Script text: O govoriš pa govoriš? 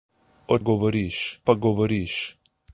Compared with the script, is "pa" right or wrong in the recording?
right